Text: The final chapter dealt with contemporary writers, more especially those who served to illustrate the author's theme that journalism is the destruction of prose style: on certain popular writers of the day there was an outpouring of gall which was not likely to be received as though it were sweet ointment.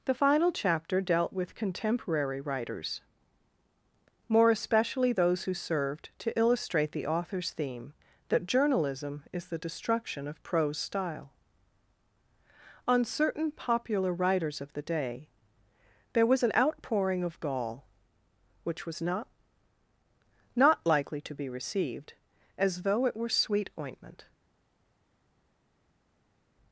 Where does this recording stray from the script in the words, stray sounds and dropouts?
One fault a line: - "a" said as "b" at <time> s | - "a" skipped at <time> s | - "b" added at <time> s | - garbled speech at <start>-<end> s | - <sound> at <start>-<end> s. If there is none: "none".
- "not" added at 20.5 s